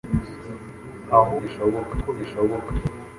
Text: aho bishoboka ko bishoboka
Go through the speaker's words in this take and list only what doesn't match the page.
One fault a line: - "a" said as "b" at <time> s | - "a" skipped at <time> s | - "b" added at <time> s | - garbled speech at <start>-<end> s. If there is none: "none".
none